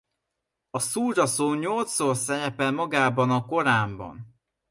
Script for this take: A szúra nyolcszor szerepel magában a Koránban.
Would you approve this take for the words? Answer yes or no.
no